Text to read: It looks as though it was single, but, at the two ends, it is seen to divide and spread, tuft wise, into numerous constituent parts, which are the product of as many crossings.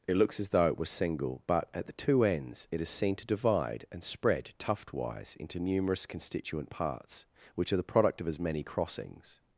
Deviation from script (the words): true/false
false